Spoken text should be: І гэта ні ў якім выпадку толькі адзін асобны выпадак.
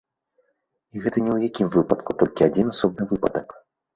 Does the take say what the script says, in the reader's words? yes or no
yes